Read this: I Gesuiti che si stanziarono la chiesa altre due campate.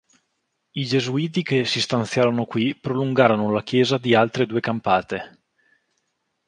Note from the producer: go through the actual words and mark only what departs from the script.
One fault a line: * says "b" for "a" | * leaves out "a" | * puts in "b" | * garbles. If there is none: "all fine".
* puts in "qui prolungarono"
* puts in "di"